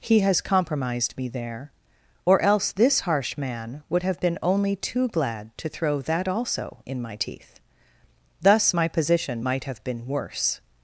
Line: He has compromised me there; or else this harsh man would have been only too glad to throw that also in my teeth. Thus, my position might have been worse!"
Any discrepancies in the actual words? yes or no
no